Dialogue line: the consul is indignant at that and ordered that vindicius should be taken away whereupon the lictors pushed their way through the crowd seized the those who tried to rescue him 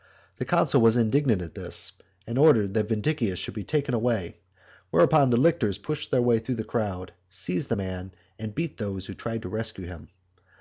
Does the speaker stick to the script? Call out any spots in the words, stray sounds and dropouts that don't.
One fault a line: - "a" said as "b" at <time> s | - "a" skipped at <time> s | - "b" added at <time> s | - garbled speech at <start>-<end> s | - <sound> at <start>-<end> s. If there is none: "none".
- "is" said as "was" at 0.8 s
- "that" said as "this" at 1.5 s
- "man and beat" added at 7.7 s